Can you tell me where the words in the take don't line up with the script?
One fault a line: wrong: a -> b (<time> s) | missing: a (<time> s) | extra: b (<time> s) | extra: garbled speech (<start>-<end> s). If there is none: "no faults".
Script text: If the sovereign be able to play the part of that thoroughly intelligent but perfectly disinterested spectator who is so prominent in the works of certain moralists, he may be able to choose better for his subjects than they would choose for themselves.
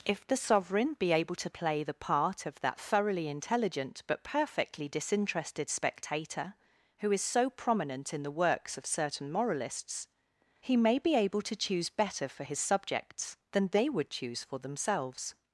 no faults